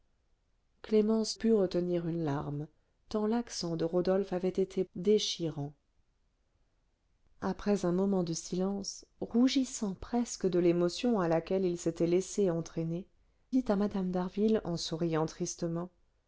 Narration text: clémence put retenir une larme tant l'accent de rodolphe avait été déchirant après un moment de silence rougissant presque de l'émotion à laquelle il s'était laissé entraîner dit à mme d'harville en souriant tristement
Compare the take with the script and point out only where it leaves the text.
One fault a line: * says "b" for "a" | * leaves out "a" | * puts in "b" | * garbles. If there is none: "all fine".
all fine